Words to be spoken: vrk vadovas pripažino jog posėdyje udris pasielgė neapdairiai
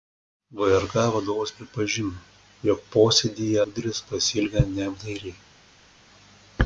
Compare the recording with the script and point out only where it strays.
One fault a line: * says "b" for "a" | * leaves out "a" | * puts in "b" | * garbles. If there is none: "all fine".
all fine